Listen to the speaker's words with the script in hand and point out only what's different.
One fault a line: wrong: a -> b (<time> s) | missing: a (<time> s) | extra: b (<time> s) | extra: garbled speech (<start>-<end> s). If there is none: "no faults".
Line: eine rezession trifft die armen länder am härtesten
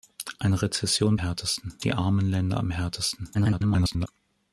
wrong: trifft -> härtesten (1.1 s)
extra: garbled speech (3.3-4.1 s)